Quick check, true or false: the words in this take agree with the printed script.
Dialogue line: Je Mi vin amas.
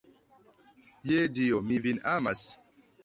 false